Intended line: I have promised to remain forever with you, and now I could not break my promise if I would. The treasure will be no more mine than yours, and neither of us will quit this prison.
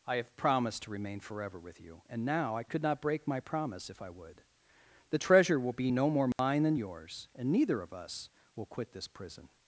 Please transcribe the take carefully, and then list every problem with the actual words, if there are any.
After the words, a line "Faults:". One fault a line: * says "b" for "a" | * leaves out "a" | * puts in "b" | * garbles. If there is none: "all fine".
I have promised to remain forever with you, and now I could not break my promise if I would. The treasure will be no more mine than yours, and neither of us will quit this prison.
Faults:
all fine